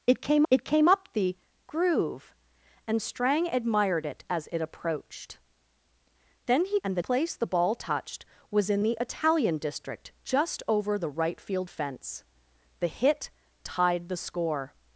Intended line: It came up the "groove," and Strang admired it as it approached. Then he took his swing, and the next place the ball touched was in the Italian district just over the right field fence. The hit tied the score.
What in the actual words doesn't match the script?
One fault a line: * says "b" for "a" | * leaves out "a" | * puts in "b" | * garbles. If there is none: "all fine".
* puts in "it came"
* leaves out "took his swing"
* leaves out "next"